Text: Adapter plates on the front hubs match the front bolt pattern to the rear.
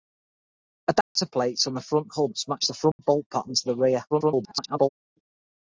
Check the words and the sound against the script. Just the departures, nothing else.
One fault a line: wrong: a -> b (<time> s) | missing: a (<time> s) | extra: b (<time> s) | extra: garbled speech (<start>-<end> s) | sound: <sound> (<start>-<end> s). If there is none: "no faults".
sound: dropout (1.0-1.2 s)
sound: dropout (2.9-3.0 s)
extra: garbled speech (4.1-4.9 s)